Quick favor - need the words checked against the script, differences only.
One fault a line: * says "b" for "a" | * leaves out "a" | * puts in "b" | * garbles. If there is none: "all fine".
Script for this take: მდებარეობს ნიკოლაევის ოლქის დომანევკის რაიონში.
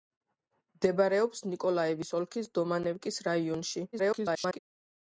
* garbles